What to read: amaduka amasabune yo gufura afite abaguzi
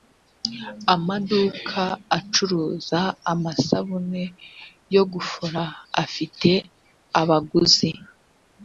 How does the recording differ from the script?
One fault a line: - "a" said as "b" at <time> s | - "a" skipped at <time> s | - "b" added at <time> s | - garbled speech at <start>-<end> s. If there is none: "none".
- "acuruza" added at 2.2 s